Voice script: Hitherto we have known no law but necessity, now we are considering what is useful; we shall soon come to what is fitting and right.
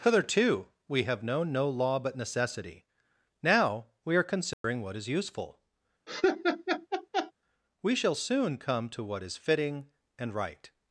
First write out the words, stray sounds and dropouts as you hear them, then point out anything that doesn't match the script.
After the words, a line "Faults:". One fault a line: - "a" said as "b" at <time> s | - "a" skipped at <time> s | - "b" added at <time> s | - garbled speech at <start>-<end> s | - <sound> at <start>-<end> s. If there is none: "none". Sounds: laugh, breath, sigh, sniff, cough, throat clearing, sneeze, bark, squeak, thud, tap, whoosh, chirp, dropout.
Hitherto we have known no law but necessity, now we are considering what is useful; we shall soon come to what is fitting and right.
Faults:
- dropout at 4.5-4.6 s
- laugh at 6.1-7.3 s